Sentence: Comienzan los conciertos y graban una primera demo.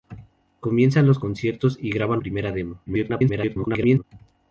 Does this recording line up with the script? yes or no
no